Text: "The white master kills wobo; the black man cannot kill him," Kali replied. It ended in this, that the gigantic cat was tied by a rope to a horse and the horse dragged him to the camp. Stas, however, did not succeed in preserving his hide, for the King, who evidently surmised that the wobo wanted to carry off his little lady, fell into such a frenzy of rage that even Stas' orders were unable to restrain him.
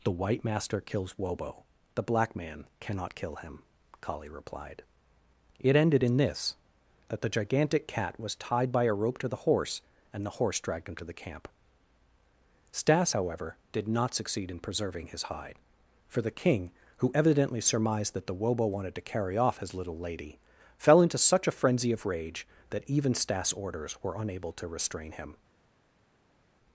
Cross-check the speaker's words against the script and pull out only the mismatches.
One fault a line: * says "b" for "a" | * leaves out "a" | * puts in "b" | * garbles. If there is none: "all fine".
* says "the" for "a"